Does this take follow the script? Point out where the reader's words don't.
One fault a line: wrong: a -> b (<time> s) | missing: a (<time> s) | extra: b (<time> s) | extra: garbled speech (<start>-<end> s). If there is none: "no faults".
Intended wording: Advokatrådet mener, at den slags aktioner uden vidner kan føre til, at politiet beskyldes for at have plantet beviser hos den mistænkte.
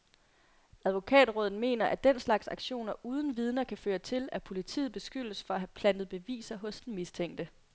no faults